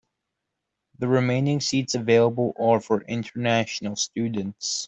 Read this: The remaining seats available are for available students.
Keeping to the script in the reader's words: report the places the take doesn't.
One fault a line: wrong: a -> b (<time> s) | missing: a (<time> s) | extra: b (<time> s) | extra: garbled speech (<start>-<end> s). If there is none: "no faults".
wrong: available -> international (3.1 s)